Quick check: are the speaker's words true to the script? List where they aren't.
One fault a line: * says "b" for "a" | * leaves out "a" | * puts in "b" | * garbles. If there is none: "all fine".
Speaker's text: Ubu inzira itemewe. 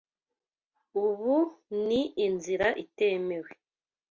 * puts in "ni"